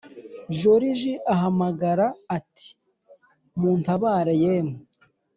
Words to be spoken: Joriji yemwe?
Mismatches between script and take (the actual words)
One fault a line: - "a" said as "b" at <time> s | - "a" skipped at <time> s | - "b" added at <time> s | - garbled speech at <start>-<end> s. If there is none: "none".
- "ahamagara ati muntabare" added at 1.3 s